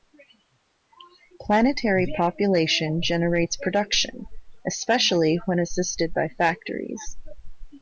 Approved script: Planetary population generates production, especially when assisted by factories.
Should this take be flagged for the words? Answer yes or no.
no